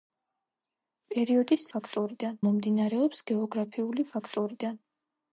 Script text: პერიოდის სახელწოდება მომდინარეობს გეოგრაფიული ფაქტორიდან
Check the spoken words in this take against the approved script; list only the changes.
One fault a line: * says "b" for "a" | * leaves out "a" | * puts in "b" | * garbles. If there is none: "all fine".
* says "ფაქტორიდან" for "სახელწოდება"